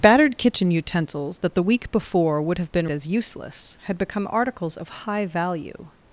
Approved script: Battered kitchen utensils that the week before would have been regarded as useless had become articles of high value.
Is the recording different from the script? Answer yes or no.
yes